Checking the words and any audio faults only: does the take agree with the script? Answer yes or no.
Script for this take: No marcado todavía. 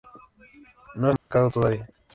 no